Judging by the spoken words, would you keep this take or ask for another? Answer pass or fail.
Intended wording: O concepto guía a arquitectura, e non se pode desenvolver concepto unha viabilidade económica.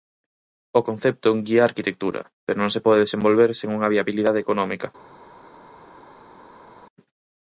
fail